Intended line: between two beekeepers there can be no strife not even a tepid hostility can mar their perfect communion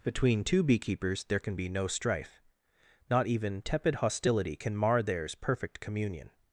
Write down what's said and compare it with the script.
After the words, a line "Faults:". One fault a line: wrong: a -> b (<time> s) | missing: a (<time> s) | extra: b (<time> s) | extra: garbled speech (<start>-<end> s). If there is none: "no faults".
between two beekeepers there can be no strife not even tepid hostility can mar theirs perfect communion
Faults:
missing: a (3.6 s)
wrong: their -> theirs (5.0 s)